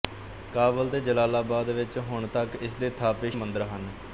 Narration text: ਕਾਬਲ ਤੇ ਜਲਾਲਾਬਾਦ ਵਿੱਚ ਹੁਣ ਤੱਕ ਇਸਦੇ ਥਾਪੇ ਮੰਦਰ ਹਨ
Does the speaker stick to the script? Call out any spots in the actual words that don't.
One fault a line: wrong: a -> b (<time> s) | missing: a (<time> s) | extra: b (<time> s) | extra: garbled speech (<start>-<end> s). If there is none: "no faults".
no faults